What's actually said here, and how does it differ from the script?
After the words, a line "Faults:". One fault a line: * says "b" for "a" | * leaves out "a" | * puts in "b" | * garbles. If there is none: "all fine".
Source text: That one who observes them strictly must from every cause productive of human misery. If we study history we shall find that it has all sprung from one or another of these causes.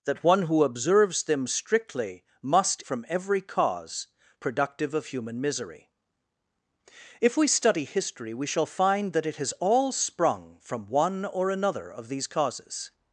That one who observes them strictly must from every cause productive of human misery. If we study history we shall find that it has all sprung from one or another of these causes.
Faults:
all fine